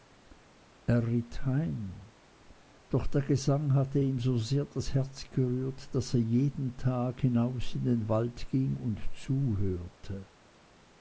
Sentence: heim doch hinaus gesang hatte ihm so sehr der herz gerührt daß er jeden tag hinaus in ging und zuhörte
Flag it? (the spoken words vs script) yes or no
yes